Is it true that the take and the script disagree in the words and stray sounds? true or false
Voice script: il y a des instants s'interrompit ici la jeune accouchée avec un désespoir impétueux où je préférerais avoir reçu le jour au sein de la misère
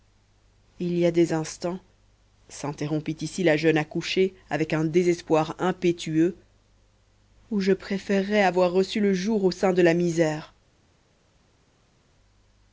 false